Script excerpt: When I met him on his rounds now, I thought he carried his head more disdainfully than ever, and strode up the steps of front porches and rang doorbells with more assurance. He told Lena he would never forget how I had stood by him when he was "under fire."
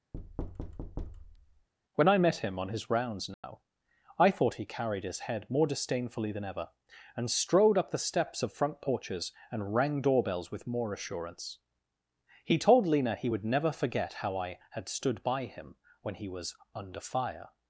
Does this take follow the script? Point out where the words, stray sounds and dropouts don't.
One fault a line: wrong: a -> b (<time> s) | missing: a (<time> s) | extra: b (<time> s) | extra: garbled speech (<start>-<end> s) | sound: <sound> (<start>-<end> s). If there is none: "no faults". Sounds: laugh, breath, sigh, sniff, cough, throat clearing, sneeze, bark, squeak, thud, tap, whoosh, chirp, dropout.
sound: thud (0.1-1.7 s)
sound: dropout (3.3-3.4 s)